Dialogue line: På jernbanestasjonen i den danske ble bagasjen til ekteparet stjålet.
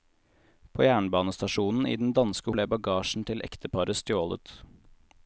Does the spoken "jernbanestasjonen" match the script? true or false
true